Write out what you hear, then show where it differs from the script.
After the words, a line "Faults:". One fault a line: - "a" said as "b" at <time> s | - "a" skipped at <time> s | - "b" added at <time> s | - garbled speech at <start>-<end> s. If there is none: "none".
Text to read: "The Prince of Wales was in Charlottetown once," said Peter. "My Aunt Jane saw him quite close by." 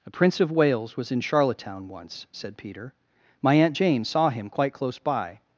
"A Prince of Wales was in Charlottetown once," said Peter. "My Aunt Jane saw him quite close by."
Faults:
- "The" said as "A" at 0.1 s